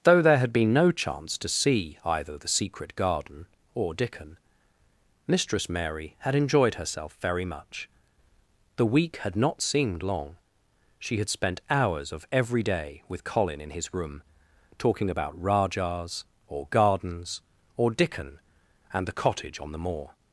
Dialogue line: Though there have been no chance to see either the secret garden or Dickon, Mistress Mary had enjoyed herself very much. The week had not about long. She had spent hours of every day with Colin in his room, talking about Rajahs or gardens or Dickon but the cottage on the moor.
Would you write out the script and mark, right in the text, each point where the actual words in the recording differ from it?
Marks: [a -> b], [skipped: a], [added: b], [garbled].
Though there [have -> had] been no chance to see either the secret garden or Dickon, Mistress Mary had enjoyed herself very much. The week had not [about -> seemed] long. She had spent hours of every day with Colin in his room, talking about Rajahs or gardens or Dickon [but -> and] the cottage on the moor.